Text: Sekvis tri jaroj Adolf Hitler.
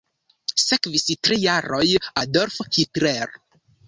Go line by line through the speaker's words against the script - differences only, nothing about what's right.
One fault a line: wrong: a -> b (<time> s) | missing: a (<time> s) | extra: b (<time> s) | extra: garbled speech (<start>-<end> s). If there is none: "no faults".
no faults